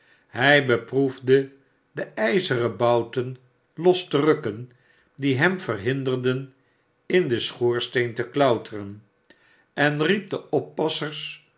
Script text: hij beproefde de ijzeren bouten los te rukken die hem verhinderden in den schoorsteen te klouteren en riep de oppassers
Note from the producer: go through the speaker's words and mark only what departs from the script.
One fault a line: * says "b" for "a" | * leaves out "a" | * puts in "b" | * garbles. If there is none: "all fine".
all fine